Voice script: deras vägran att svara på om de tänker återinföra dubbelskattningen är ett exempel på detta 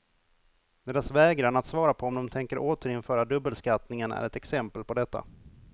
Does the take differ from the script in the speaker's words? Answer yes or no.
no